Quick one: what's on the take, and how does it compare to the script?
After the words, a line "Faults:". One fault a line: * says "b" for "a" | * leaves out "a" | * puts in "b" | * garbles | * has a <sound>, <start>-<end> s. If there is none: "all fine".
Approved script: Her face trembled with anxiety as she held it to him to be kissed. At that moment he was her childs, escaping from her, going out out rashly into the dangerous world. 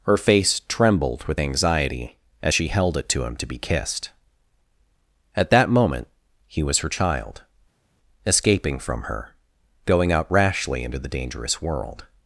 Her face trembled with anxiety as she held it to him to be kissed. At that moment he was her child, escaping from her, going out rashly into the dangerous world.
Faults:
* says "child" for "childs"
* leaves out "out"